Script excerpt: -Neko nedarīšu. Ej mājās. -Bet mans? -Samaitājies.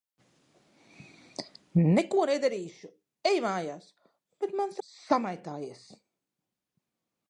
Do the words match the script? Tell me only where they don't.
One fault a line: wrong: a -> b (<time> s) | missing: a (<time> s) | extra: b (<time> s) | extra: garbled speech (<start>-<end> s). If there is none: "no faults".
no faults